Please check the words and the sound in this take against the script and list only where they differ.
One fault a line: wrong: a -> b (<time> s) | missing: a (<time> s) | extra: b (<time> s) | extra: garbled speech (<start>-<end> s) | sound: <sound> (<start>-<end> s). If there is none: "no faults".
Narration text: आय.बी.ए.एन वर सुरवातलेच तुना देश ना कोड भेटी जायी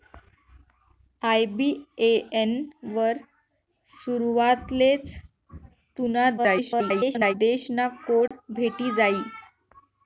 extra: garbled speech (6.4-7.3 s)
sound: dropout (8.3-8.3 s)